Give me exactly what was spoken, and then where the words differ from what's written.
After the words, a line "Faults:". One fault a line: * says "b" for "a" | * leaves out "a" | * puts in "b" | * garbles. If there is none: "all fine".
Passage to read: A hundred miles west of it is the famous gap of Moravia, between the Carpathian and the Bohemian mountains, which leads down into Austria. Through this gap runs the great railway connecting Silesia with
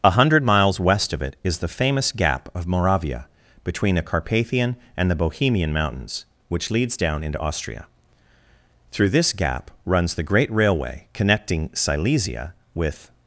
A hundred miles west of it is the famous gap of Moravia, between the Carpathian and the Bohemian mountains, which leads down into Austria. Through this gap runs the great railway connecting Silesia with
Faults:
all fine